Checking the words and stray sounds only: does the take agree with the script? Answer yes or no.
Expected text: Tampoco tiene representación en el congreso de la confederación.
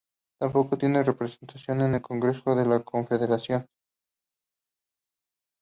yes